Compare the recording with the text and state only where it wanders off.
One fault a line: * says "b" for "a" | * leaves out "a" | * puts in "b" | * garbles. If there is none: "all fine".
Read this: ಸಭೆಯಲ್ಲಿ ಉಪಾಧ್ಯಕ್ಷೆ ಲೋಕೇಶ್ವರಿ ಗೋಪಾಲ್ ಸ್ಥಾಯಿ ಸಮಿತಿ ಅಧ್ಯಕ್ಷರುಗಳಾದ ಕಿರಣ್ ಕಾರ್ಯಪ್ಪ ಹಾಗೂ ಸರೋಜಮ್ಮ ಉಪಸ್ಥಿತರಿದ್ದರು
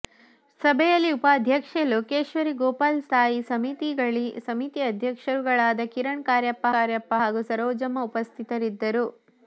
* puts in "ಕಾರ್ಯಪ್ಪ"